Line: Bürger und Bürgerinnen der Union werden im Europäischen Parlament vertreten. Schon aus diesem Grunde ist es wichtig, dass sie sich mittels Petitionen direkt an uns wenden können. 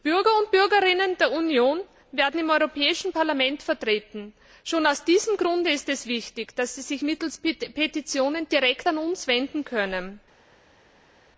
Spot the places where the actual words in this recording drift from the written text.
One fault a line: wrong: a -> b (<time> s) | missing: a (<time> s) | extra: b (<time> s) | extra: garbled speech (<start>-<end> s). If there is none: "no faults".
no faults